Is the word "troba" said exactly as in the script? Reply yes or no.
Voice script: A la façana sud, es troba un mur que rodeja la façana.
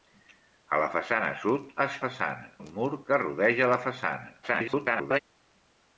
no